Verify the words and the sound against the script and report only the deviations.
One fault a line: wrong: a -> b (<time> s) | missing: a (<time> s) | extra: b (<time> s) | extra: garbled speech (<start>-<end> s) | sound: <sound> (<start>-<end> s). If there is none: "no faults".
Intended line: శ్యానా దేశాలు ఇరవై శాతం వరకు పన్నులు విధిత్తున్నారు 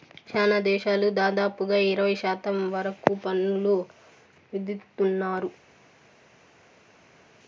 extra: దాదాపుగా (1.2 s)